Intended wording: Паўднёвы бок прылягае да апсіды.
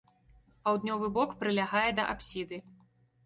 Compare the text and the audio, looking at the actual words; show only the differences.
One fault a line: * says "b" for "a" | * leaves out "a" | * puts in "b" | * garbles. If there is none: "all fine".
all fine